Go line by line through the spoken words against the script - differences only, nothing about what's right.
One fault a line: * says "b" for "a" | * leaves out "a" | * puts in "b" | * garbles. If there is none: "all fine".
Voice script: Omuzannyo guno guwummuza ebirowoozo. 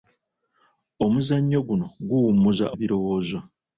all fine